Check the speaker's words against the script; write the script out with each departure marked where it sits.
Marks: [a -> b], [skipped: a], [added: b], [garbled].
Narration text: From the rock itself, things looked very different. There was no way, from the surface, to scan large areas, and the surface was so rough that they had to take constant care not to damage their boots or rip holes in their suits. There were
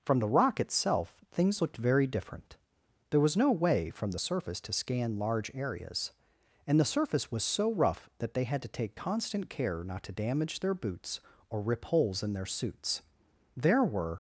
From the rock itself, things looked very different. There was no way, from the surface, to scan large areas, and the surface was so rough that they had to take constant care not to damage their boots or rip holes in their suits. There were